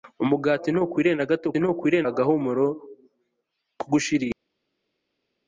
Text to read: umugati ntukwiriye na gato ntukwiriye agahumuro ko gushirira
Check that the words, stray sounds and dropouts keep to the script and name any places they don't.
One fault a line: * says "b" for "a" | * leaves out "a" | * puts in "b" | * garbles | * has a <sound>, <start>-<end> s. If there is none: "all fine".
all fine